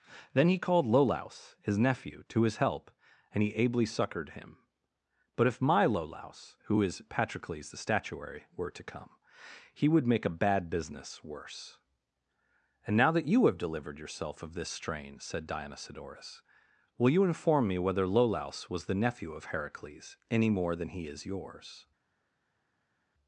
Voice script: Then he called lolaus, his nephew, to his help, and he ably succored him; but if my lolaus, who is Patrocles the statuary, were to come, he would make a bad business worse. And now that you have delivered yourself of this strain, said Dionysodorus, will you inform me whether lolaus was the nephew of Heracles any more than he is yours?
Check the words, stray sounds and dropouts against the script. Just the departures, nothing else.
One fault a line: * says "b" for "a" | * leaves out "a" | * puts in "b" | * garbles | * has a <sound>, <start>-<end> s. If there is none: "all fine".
all fine